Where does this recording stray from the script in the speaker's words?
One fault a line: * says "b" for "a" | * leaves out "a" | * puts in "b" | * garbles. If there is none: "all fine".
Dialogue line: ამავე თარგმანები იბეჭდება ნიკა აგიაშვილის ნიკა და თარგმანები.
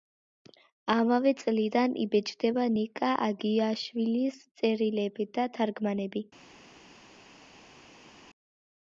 * says "წლიდან" for "თარგმანები"
* says "წერილები" for "ნიკა"